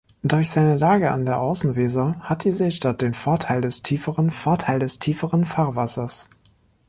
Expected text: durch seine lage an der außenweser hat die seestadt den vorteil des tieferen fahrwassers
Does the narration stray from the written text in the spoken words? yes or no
yes